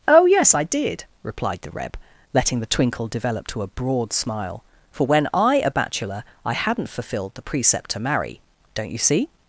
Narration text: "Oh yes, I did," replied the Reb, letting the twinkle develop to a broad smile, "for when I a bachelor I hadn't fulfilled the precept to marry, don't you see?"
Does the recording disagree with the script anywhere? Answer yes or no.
no